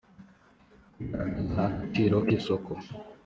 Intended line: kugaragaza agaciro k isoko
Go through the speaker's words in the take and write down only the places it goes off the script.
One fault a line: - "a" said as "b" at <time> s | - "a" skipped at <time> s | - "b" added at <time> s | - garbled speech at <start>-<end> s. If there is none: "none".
none